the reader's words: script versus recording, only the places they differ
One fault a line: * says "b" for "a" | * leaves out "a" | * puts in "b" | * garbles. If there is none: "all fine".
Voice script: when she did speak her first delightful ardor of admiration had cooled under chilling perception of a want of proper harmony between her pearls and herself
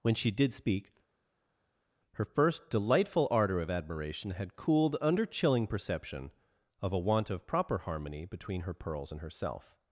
all fine